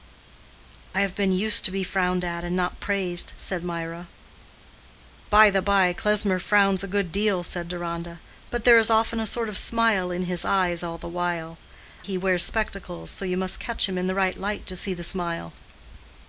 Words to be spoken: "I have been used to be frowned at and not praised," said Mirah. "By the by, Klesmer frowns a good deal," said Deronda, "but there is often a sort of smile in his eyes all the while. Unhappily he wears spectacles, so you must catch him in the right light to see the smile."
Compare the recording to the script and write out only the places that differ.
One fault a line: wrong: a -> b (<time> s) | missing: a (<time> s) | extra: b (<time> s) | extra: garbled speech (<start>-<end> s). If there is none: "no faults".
missing: Unhappily (11.6 s)